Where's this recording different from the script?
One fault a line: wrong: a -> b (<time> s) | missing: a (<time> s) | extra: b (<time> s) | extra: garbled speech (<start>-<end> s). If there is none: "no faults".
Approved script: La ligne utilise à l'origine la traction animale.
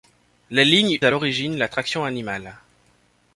missing: utilise (1.0 s)